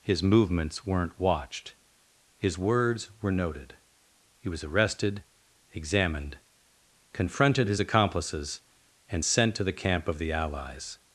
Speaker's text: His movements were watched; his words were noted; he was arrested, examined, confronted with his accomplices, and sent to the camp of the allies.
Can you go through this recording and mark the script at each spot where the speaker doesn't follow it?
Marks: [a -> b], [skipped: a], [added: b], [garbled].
His movements [were -> weren't] watched; his words were noted; he was arrested, examined, confronted [skipped: with] his accomplices, and sent to the camp of the allies.